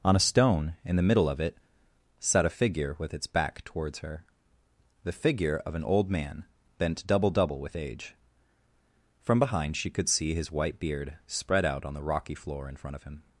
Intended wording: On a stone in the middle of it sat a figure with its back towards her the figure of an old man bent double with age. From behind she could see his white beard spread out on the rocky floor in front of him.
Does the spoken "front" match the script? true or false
true